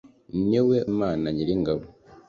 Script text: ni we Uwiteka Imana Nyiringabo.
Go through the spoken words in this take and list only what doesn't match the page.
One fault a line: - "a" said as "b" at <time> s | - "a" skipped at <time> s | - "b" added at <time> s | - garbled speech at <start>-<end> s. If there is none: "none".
- "Uwiteka" skipped at 0.8 s